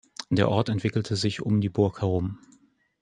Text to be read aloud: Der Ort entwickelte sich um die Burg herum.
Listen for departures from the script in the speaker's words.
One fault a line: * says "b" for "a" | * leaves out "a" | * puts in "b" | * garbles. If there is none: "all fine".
all fine